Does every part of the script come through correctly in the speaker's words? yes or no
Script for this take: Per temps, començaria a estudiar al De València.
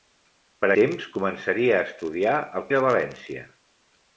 yes